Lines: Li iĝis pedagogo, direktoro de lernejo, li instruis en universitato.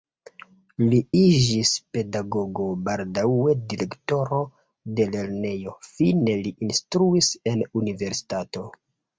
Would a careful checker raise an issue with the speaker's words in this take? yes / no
yes